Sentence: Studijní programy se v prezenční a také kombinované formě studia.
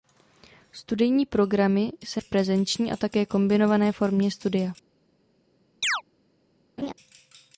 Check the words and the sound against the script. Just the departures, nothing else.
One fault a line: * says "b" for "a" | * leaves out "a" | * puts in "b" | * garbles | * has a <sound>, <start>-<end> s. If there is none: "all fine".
* has a chirp, 5.8-6.0 s
* has a laugh, 6.8-6.9 s